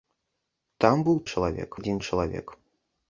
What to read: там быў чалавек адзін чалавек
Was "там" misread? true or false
false